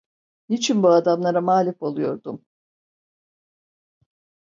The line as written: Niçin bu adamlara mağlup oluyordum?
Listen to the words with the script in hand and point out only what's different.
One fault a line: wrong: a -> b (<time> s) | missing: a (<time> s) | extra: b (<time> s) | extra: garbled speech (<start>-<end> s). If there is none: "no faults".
no faults